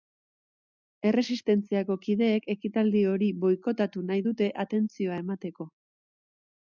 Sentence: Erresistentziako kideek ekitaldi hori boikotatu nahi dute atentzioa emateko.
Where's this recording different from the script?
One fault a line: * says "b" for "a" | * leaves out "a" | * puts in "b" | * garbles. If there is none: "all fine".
all fine